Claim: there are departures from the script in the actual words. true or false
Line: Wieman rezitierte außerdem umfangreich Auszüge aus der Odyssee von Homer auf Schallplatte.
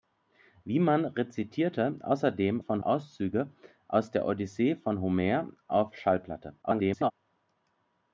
true